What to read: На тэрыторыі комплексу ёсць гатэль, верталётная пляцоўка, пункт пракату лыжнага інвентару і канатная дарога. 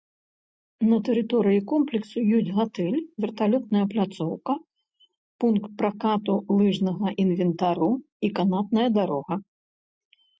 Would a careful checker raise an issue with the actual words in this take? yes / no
no